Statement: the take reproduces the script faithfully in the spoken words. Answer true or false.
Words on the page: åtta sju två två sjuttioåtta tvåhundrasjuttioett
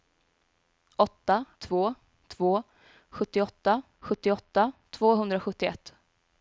false